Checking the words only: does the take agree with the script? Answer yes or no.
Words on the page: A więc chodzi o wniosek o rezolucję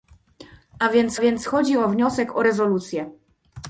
no